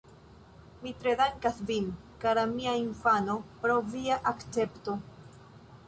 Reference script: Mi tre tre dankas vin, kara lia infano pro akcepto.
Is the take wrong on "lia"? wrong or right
wrong